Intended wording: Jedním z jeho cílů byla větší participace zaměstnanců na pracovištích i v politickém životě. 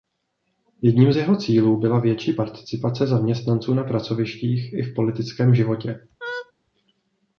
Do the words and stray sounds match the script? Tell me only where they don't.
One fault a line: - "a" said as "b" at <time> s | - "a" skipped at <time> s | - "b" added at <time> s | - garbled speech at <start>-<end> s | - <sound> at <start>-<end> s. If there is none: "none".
- laugh at 6.2-6.5 s